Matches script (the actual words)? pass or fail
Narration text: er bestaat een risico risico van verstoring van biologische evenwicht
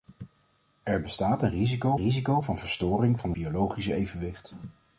pass